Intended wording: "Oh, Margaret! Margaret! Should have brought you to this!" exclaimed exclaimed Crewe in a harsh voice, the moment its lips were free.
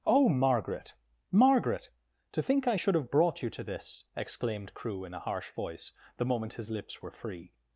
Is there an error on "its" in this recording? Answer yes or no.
yes